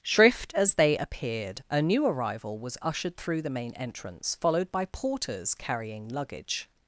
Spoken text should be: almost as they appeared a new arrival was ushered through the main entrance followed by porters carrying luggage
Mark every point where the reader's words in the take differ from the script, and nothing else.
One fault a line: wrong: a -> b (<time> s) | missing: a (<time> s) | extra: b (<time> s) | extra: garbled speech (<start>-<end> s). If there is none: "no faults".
wrong: almost -> shrift (0.0 s)